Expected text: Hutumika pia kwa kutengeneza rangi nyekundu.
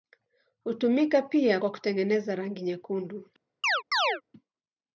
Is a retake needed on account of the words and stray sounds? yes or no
yes